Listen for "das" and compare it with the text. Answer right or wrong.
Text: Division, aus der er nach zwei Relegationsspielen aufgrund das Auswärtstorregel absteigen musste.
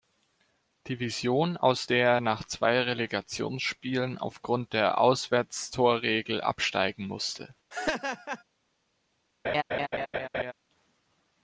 wrong